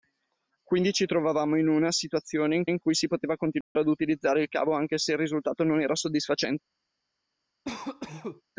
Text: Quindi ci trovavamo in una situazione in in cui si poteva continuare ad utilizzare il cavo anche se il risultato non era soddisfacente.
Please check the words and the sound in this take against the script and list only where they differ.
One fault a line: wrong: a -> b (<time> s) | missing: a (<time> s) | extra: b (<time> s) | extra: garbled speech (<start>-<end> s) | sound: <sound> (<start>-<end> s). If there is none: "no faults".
sound: dropout (3.6-3.8 s)
sound: cough (7.6-8.4 s)